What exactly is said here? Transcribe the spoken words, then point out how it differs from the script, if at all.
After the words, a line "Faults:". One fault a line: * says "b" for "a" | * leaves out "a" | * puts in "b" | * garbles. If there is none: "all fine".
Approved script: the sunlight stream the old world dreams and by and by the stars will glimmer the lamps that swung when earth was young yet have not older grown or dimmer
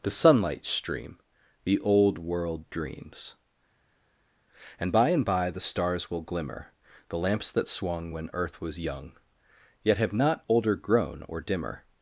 the sunlight stream the old world dreams and by and by the stars will glimmer the lamps that swung when earth was young yet have not older grown or dimmer
Faults:
all fine